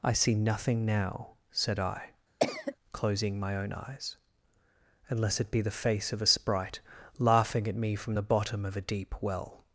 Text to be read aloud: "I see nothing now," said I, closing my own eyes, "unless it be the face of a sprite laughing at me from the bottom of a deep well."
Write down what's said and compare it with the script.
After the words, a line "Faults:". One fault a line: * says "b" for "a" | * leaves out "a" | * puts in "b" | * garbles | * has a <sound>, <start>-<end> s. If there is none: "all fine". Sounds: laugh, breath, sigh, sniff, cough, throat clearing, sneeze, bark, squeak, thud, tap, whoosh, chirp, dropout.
"I see nothing now," said I, closing my own eyes, "unless it be the face of a sprite laughing at me from the bottom of a deep well."
Faults:
* has a cough, 2.4-2.8 s